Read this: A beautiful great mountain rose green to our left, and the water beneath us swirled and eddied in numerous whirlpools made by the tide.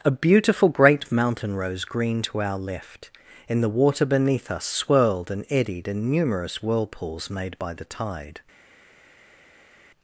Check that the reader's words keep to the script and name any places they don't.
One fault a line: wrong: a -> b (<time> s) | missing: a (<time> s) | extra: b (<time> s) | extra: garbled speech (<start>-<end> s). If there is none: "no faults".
wrong: and -> in (3.5 s)